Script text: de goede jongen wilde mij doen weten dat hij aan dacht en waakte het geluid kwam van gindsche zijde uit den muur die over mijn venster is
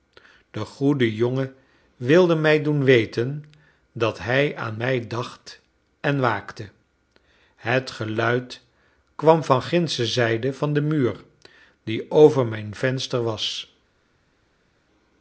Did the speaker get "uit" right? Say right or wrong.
wrong